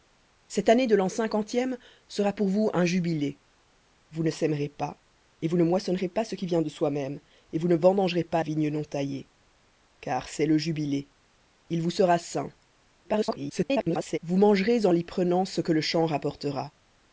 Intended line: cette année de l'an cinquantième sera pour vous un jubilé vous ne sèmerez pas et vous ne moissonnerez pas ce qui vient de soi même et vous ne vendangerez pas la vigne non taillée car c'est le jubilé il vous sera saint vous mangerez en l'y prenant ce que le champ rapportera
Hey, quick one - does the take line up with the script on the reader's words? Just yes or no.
no